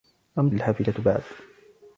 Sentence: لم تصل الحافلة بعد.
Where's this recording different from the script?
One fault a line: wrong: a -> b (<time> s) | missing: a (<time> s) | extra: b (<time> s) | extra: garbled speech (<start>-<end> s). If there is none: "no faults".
missing: تصل (0.5 s)